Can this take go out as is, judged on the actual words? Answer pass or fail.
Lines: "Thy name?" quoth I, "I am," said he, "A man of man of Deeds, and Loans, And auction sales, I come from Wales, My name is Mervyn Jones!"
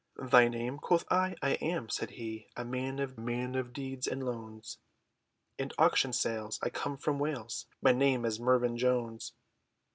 pass